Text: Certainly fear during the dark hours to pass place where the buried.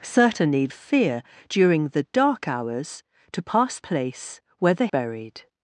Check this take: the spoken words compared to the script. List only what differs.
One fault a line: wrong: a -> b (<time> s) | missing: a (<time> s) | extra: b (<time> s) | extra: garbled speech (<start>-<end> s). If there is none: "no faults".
no faults